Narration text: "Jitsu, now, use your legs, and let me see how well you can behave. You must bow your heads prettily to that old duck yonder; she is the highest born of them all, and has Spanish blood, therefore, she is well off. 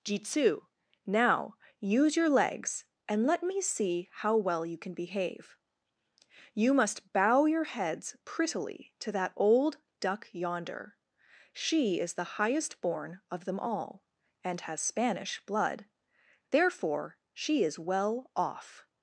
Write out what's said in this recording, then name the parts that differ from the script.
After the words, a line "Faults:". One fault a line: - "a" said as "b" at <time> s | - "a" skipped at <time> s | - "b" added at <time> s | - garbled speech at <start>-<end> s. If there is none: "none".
"Jitsu, now, use your legs, and let me see how well you can behave. You must bow your heads prettily to that old duck yonder; she is the highest born of them all, and has Spanish blood, therefore, she is well off.
Faults:
none